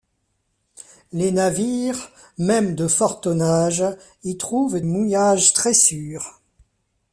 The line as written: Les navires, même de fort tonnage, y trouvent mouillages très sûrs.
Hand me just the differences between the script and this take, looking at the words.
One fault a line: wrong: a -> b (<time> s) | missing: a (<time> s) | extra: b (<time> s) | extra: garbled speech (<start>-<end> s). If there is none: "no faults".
no faults